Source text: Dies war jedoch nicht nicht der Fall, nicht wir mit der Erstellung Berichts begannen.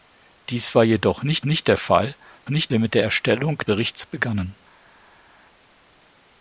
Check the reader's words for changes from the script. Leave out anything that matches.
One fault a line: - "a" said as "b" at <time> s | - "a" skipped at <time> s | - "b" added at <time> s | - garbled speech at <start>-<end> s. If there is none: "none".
none